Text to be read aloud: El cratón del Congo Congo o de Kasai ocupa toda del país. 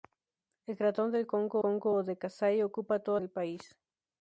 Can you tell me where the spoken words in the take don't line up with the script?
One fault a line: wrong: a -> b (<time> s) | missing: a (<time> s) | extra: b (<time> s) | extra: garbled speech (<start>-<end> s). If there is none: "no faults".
no faults